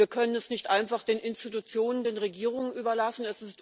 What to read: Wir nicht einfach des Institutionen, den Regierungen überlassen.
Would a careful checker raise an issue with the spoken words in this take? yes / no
yes